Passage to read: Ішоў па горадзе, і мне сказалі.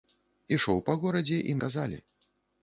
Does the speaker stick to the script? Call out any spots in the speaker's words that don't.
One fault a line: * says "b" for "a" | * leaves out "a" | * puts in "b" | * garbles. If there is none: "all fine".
* leaves out "мне"